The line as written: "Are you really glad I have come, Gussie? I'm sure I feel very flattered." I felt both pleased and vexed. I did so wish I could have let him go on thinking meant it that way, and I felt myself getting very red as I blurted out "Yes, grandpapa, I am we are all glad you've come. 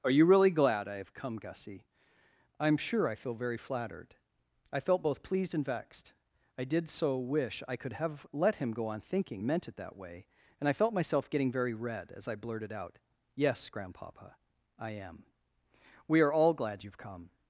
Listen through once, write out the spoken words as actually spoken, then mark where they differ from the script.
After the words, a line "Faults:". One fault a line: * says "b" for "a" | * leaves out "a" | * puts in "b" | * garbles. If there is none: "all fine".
"Are you really glad I have come, Gussie? I'm sure I feel very flattered." I felt both pleased and vexed. I did so wish I could have let him go on thinking meant it that way, and I felt myself getting very red as I blurted out "Yes, grandpapa, I am we are all glad you've come.
Faults:
all fine